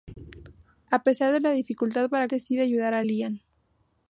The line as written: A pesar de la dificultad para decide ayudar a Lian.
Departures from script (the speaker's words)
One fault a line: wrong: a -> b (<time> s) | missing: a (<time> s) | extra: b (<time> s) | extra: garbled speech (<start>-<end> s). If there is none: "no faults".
no faults